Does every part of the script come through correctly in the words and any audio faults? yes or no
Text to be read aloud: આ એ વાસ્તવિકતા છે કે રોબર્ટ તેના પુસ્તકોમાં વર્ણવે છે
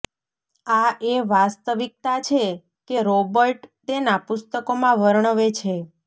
yes